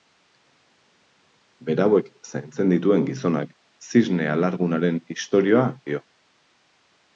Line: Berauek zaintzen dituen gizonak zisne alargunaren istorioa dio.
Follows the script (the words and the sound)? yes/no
yes